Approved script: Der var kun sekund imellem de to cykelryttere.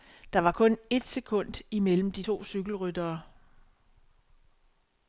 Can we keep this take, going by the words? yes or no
no